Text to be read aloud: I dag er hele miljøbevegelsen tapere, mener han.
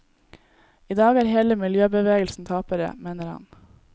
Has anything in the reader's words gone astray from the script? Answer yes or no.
no